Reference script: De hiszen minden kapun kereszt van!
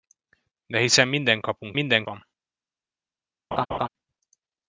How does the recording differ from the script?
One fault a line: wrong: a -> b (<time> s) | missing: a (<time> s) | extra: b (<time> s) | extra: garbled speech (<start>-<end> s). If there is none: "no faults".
wrong: kereszt -> minden (1.7 s)